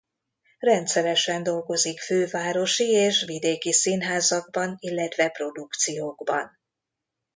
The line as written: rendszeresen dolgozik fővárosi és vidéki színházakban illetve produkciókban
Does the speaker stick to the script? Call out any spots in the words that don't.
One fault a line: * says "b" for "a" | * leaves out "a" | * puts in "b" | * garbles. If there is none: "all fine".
all fine